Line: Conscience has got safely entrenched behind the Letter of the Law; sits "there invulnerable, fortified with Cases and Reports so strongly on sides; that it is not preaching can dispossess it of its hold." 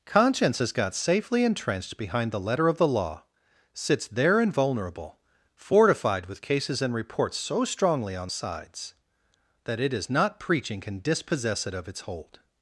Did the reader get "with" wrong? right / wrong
right